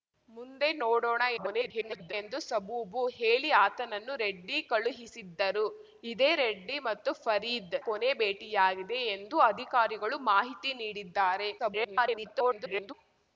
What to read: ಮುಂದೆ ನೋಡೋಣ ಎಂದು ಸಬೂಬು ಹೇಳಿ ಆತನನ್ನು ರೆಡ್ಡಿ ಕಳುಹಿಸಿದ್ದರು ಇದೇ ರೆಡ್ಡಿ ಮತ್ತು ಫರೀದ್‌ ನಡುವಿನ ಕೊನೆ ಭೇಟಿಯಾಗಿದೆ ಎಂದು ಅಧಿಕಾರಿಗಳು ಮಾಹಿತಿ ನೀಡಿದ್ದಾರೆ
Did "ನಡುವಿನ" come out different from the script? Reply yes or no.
yes